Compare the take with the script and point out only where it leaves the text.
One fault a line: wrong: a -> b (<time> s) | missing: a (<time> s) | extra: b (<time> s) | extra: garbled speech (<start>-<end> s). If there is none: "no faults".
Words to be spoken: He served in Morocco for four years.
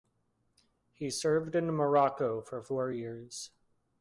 no faults